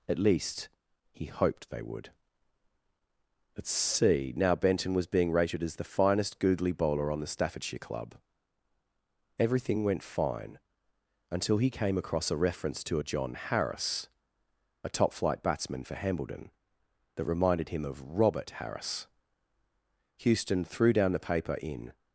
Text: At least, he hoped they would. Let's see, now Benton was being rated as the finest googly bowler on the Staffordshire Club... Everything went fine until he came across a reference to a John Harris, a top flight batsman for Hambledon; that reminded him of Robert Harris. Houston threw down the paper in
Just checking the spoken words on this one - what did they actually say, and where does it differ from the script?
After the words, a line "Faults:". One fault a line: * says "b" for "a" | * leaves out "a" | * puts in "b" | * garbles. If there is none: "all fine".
At least, he hoped they would. Let's see, now Benton was being rated as the finest googly bowler on the Staffordshire Club... Everything went fine until he came across a reference to a John Harris, a top flight batsman for Hambledon; that reminded him of Robert Harris. Houston threw down the paper in
Faults:
all fine